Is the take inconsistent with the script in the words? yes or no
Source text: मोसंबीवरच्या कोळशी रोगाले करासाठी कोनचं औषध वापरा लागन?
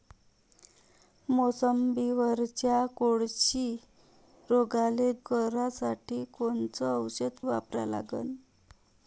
no